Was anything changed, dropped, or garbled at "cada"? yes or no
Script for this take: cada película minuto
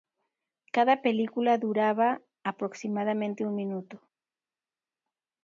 no